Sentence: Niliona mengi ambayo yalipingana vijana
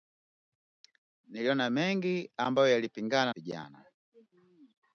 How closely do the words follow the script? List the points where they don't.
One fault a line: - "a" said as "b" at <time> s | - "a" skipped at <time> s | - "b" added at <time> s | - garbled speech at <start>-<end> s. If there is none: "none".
none